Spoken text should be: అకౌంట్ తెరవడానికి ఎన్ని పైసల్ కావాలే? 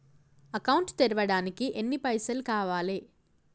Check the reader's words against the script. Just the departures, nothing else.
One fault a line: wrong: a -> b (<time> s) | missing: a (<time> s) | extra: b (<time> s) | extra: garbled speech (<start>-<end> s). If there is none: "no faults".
no faults